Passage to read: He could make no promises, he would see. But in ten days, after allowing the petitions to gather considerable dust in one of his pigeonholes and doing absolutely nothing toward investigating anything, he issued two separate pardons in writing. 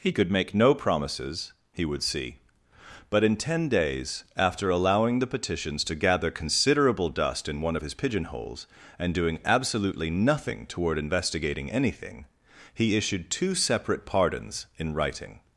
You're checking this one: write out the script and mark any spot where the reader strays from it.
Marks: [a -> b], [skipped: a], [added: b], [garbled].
He could make no promises, he would see. But in ten days, after allowing the petitions to gather considerable dust in one of his pigeonholes and doing absolutely nothing toward investigating anything, he issued two separate pardons in writing.